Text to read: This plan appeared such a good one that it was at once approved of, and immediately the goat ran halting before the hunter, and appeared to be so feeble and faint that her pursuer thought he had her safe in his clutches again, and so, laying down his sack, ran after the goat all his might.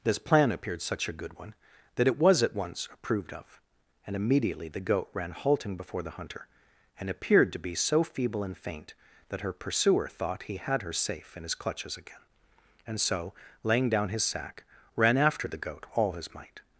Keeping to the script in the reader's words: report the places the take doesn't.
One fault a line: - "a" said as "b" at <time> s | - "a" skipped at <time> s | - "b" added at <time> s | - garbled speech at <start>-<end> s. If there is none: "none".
none